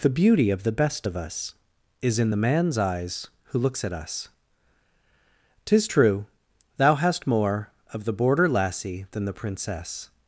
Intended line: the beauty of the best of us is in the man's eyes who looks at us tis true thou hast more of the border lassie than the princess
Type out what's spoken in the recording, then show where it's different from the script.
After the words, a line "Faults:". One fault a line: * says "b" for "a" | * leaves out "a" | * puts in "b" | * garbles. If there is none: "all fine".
the beauty of the best of us is in the man's eyes who looks at us tis true thou hast more of the border lassie than the princess
Faults:
all fine